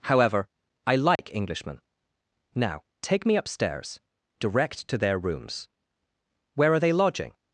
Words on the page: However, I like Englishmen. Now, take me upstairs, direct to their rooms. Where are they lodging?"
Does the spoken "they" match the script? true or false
true